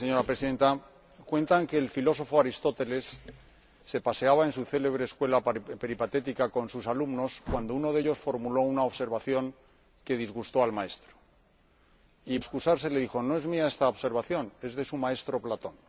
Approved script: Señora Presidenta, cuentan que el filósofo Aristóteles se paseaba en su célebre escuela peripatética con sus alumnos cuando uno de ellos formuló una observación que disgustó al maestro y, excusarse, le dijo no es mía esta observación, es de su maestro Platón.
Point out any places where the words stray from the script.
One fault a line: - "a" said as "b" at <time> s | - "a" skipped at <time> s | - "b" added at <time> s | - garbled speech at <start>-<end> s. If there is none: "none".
none